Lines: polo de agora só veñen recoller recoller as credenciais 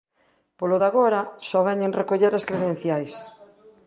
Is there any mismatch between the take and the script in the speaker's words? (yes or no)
yes